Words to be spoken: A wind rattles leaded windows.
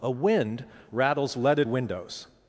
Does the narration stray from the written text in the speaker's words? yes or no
no